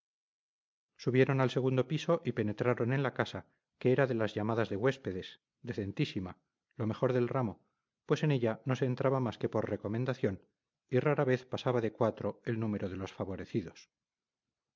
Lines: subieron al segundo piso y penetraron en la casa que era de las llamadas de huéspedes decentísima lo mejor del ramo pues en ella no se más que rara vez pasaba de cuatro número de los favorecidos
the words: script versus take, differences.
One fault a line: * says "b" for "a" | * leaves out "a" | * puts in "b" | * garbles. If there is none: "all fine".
* puts in "entraba"
* puts in "por recomendación y"
* puts in "el"